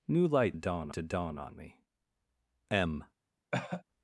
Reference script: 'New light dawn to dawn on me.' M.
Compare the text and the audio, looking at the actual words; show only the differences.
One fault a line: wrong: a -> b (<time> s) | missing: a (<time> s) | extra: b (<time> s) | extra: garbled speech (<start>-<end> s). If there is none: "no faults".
no faults